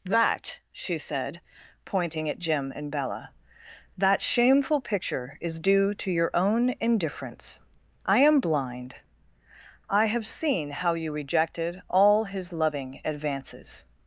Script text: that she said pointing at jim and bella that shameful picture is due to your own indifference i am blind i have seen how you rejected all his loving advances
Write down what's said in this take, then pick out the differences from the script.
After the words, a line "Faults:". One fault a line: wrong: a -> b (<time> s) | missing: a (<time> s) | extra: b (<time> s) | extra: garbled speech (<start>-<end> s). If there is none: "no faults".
that she said pointing at jim and bella that shameful picture is due to your own indifference i am blind i have seen how you rejected all his loving advances
Faults:
no faults